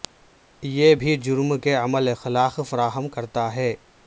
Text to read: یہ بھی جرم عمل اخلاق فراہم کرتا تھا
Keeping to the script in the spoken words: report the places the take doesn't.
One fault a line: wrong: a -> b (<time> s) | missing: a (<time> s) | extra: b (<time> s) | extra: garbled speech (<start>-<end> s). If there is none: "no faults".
extra: کے (1.6 s)
wrong: تھا -> ہے (3.5 s)